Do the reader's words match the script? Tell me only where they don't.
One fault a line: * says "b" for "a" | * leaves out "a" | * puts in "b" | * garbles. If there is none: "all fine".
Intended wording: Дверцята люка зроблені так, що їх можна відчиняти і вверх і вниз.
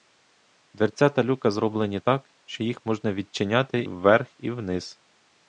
* leaves out "і"